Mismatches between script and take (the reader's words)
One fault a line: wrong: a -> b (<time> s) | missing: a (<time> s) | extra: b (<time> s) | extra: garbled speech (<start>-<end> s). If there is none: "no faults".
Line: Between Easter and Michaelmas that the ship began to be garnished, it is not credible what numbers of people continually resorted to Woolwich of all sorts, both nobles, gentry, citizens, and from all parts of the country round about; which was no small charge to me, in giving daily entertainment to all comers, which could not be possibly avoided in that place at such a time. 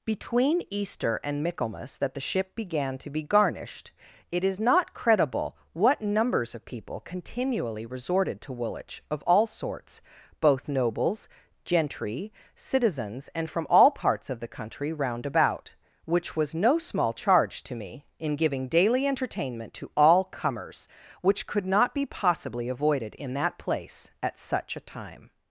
no faults